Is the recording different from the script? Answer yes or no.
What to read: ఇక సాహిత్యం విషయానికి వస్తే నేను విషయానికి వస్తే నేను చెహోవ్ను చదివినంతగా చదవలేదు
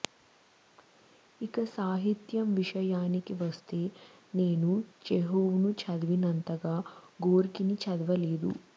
yes